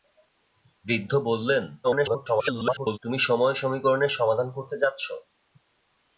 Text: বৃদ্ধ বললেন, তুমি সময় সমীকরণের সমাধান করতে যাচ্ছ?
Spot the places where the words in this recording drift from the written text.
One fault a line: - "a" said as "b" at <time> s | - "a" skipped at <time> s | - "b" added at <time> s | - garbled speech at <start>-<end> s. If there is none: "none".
- garbled speech at 1.8-3.0 s